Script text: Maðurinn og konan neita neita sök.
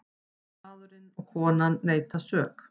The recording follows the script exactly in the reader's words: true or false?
false